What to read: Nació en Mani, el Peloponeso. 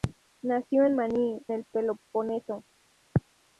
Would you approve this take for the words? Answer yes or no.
yes